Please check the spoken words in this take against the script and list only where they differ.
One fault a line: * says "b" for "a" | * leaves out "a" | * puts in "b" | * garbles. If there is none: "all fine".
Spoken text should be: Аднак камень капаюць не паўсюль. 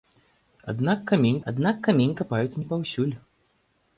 * puts in "аднак камень"